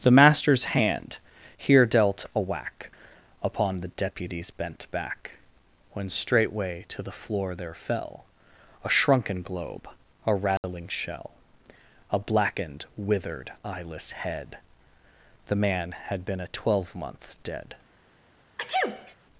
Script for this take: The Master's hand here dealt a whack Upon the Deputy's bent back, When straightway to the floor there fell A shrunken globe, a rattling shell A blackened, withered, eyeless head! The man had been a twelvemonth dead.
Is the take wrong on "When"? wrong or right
right